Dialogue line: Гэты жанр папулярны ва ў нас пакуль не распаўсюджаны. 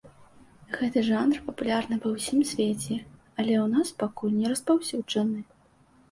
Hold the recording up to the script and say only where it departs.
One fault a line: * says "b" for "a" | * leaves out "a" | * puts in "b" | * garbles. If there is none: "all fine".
* puts in "ўсім свеце але"